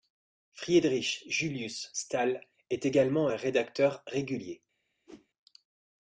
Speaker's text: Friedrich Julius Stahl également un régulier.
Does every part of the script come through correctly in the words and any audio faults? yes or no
no